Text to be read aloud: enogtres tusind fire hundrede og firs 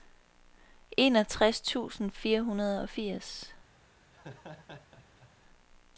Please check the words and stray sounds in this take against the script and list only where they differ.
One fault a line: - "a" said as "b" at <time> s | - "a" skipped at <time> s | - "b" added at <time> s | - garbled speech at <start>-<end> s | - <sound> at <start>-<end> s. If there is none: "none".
- laugh at 4.1-5.3 s